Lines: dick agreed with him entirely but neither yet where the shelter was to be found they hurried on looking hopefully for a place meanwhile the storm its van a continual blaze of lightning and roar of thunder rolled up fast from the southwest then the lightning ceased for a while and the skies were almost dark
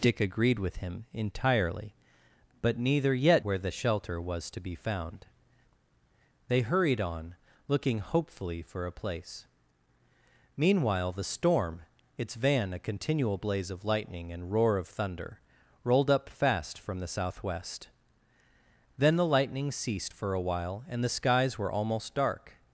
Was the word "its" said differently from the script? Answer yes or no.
no